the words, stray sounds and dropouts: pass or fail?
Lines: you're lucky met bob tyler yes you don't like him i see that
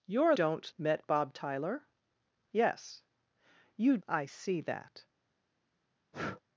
fail